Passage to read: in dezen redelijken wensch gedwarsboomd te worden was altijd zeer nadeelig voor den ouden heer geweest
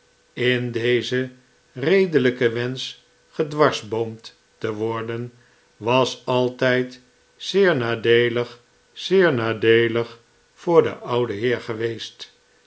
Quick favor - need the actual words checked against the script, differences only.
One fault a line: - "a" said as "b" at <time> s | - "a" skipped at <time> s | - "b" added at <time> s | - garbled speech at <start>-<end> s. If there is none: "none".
- "zeer nadeelig" added at 8.9 s